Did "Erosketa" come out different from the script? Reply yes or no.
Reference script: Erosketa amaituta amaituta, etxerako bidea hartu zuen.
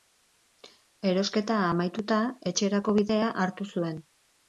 no